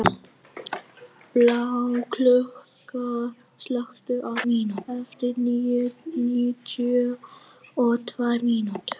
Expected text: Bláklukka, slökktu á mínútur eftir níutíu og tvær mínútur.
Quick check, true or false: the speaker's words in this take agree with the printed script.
true